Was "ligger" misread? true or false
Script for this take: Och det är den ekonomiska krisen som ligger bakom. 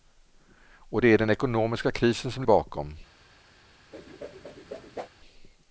true